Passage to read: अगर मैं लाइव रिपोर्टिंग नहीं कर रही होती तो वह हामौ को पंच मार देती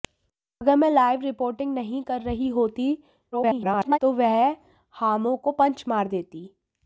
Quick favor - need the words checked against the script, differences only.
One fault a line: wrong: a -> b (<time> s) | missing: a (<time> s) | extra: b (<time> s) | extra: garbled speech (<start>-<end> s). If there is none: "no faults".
extra: garbled speech (3.3-4.0 s)